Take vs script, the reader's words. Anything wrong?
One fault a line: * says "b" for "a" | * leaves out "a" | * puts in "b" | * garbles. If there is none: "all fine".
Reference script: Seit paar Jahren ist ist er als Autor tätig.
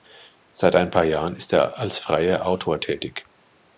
* puts in "ein"
* leaves out "ist"
* puts in "freier"